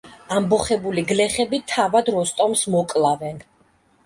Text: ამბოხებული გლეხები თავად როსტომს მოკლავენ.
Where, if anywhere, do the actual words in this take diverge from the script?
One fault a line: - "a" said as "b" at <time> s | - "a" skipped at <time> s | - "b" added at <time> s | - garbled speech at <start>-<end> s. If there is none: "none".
none